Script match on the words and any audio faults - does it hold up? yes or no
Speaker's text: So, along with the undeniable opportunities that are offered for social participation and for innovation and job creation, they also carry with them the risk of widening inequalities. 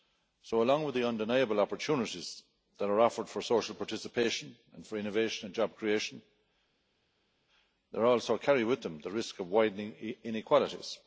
yes